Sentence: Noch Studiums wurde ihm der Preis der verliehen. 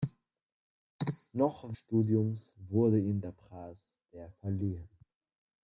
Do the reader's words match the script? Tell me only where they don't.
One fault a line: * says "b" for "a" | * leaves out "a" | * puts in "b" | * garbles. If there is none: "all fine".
all fine